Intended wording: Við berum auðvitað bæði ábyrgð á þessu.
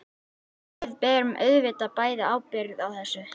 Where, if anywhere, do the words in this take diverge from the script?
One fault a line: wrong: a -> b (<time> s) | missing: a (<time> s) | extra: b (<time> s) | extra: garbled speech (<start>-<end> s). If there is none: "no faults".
no faults